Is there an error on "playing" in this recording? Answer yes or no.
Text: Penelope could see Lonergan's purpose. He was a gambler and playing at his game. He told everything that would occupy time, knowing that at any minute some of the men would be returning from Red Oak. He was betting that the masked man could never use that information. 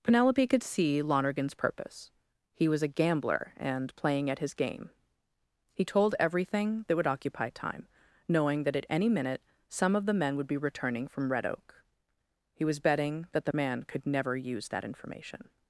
no